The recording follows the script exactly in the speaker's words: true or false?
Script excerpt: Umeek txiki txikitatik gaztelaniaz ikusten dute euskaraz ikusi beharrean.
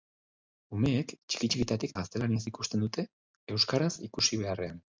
true